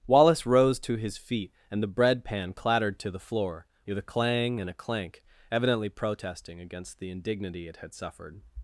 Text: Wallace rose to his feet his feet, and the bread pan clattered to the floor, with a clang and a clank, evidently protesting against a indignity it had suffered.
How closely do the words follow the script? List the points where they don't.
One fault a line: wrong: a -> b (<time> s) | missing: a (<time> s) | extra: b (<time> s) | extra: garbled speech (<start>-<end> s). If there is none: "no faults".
missing: his feet (1.5 s)
wrong: a -> the (7.0 s)